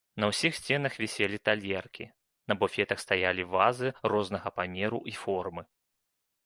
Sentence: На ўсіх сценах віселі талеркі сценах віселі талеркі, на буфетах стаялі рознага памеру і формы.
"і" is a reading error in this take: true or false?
false